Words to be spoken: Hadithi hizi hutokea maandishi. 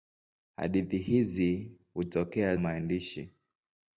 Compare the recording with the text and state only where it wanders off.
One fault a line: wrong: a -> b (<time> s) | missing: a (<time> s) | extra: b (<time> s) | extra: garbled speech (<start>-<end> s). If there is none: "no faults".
no faults